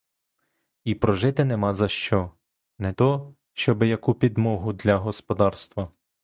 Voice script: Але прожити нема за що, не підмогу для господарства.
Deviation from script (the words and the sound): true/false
true